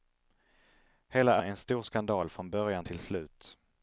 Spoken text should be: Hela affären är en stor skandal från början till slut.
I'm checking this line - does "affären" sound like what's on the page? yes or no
no